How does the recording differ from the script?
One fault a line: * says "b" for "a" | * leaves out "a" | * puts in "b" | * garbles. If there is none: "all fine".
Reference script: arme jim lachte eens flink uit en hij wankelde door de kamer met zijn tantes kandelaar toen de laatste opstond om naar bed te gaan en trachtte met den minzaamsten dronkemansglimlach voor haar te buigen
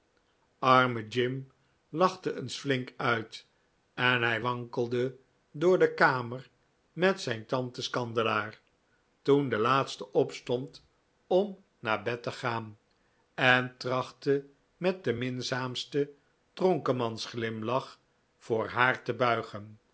all fine